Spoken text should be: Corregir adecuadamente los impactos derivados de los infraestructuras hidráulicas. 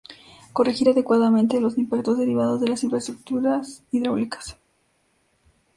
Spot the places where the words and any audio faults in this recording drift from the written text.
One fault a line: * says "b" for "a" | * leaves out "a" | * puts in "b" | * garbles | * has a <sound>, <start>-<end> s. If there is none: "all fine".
* says "las" for "los"